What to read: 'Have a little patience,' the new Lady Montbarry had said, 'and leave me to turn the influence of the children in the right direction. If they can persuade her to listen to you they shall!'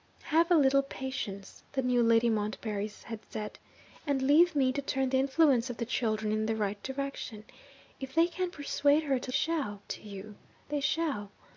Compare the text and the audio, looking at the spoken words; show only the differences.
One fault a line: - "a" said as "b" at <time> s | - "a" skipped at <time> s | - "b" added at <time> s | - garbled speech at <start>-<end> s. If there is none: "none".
- "listen" said as "shall" at 9.3 s